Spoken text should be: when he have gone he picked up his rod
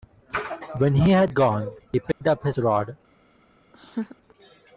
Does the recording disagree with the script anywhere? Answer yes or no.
yes